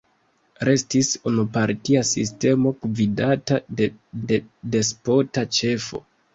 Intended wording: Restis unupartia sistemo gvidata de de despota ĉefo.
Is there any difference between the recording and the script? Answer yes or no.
no